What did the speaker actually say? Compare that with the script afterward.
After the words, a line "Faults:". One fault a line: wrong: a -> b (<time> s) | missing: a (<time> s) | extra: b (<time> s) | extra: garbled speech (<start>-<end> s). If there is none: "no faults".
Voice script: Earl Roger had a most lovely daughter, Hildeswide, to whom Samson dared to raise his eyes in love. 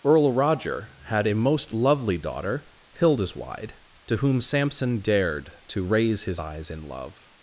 Earl Roger had a most lovely daughter, Hildeswide, to whom Samson dared to raise his eyes in love.
Faults:
no faults